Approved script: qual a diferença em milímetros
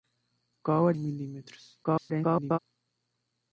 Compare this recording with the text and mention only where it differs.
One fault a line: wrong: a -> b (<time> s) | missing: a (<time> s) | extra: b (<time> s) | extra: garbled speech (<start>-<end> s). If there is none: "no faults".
missing: diferença (0.9 s)
extra: garbled speech (1.8-2.6 s)